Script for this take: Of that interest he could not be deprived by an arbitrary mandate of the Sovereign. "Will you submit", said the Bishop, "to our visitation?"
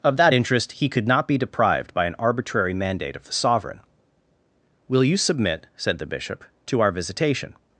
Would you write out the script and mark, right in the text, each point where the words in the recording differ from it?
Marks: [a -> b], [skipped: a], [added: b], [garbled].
Of that interest he could not be deprived by an arbitrary mandate of the Sovereign. "Will you submit", said the Bishop, "to our visitation?"